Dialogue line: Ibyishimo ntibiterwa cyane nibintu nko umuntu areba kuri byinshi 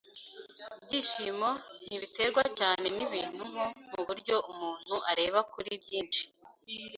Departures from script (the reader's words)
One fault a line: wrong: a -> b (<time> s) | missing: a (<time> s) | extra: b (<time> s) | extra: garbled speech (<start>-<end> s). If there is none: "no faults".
extra: muburyo (3.9 s)